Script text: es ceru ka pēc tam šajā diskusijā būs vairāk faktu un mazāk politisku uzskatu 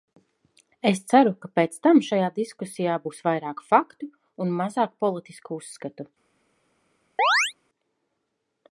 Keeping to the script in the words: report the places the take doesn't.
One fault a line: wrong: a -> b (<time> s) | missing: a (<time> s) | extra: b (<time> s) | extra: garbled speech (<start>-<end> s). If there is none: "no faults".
no faults